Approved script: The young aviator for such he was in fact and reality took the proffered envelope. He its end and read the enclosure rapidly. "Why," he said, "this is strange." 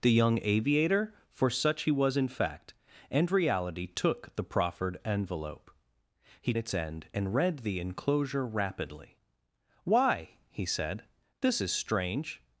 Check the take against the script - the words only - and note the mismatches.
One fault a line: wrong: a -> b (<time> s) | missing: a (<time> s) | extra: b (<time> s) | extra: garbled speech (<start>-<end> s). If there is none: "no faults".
no faults